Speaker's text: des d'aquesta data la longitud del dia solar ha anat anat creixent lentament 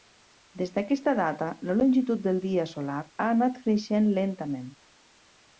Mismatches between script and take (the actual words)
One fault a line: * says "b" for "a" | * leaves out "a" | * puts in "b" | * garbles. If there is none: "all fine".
* leaves out "anat"